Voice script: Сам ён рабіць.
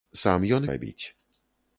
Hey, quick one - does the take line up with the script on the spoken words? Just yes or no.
yes